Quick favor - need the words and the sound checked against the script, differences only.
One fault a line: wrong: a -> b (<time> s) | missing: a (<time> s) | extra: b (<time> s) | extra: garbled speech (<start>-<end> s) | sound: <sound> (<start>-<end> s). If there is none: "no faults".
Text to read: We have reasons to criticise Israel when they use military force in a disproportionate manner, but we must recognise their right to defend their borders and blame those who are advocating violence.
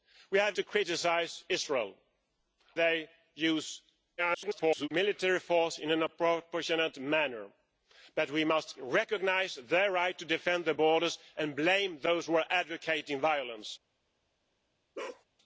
missing: reasons (0.6 s)
missing: when (1.9 s)
extra: garbled speech (4.2-4.9 s)
sound: bark (14.9-15.2 s)